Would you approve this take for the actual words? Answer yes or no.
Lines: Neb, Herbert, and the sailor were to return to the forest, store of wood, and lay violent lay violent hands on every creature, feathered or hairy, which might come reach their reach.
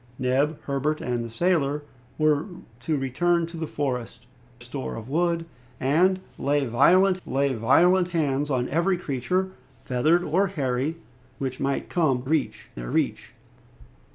yes